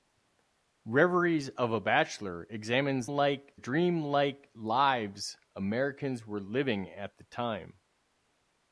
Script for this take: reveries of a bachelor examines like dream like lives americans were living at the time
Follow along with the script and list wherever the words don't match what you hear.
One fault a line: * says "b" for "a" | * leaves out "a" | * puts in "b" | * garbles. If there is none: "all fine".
all fine